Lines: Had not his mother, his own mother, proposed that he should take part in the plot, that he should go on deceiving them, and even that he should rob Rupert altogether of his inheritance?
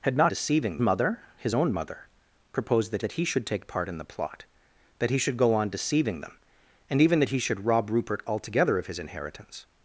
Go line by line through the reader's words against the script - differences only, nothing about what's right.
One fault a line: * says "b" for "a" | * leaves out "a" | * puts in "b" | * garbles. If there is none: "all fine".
* says "deceiving" for "his"
* puts in "that"